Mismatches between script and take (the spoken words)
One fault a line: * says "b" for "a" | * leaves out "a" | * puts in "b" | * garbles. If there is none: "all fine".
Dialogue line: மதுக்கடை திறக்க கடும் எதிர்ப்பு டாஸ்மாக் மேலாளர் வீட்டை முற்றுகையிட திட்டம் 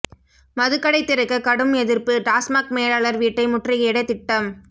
all fine